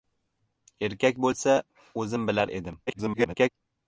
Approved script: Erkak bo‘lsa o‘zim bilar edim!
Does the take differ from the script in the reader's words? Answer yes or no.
yes